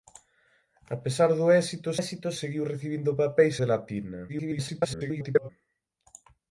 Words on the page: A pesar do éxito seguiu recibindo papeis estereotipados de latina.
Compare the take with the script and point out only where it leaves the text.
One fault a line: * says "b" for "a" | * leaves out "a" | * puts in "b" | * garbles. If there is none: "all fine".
* puts in "éxito"
* leaves out "estereotipados"
* garbles